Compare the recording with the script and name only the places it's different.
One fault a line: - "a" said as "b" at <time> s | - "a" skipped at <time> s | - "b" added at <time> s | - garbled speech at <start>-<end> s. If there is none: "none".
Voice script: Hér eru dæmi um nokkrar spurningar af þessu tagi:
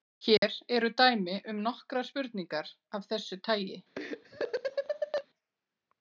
none